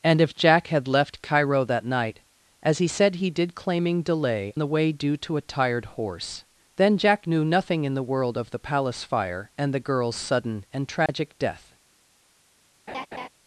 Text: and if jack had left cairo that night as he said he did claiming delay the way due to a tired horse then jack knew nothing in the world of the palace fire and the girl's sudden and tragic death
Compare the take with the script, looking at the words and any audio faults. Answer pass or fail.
fail